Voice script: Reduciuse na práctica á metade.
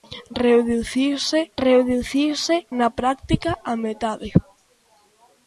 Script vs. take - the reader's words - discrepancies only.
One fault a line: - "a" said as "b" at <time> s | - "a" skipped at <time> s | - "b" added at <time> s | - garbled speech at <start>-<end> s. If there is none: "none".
- "reduciuse" added at 1.6 s